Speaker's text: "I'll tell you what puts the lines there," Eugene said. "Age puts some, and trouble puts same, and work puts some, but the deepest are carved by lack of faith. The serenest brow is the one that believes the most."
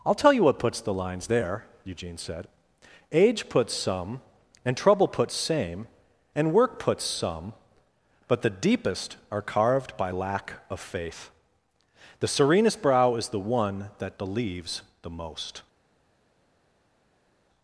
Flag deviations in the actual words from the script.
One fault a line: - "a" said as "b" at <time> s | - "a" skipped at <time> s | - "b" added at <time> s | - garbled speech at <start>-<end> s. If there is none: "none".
none